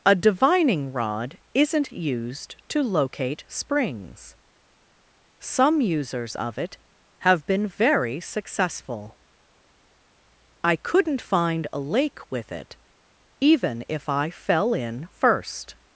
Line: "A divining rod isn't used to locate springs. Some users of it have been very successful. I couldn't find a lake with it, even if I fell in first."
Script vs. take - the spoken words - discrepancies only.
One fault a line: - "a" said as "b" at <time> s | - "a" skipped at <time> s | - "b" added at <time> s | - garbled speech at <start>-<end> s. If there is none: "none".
none